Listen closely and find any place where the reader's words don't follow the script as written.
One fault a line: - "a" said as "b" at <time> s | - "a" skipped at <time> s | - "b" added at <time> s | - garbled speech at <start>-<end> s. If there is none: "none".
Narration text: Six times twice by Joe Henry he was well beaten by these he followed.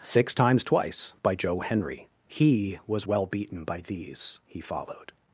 none